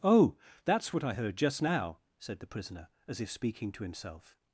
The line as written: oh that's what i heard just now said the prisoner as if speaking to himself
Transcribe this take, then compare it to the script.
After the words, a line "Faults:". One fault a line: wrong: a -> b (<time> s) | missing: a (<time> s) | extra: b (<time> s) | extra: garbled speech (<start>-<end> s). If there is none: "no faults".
oh that's what i heard just now said the prisoner as if speaking to himself
Faults:
no faults